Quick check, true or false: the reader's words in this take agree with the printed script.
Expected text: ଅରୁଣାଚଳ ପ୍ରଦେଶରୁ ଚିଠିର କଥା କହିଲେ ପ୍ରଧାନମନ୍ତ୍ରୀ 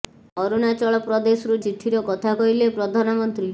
true